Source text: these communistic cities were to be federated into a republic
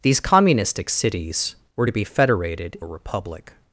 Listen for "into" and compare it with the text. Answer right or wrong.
wrong